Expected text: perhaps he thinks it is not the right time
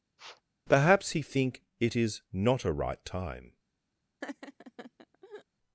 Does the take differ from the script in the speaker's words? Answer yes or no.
yes